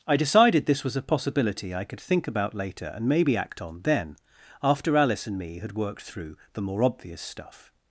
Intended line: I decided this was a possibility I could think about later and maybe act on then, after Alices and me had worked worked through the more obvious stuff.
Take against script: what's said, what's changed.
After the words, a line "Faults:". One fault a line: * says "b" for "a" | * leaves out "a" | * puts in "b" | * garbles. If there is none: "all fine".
I decided this was a possibility I could think about later and maybe act on then, after Alice and me had worked through the more obvious stuff.
Faults:
* says "Alice" for "Alices"
* leaves out "worked"